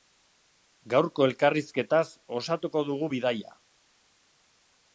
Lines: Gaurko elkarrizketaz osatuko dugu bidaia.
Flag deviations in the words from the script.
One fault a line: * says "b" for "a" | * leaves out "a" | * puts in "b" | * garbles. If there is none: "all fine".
all fine